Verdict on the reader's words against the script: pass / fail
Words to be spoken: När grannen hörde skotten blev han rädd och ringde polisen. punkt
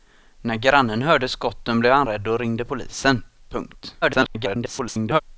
fail